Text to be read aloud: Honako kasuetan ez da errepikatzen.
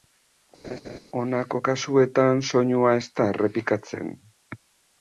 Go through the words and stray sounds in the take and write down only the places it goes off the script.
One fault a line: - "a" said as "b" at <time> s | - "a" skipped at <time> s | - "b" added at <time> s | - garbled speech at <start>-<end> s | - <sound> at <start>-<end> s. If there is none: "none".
- laugh at 0.6-1.0 s
- "soinua" added at 2.5 s